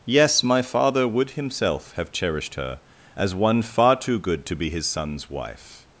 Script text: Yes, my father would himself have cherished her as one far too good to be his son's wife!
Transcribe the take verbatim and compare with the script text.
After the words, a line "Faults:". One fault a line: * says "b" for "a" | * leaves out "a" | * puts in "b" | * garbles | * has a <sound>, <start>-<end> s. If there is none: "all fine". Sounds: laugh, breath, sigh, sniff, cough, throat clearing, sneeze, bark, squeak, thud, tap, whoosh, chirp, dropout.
Yes, my father would himself have cherished her as one far too good to be his son's wife!
Faults:
all fine